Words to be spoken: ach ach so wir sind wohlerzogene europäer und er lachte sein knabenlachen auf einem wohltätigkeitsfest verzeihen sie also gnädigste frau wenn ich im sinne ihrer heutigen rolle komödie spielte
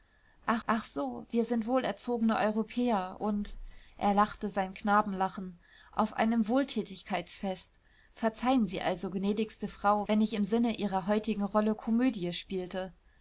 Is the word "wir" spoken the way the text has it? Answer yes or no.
yes